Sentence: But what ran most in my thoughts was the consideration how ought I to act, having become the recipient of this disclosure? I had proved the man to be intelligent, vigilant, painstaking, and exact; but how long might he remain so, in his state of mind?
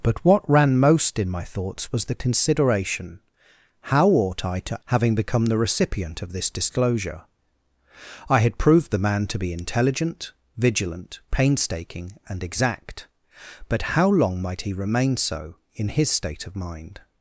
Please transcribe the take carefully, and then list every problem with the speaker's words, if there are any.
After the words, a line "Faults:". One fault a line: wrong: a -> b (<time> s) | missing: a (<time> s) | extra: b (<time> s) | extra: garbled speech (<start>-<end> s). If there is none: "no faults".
But what ran most in my thoughts was the consideration how ought I to having become the recipient of this disclosure? I had proved the man to be intelligent, vigilant, painstaking, and exact; but how long might he remain so, in his state of mind?
Faults:
missing: act (4.8 s)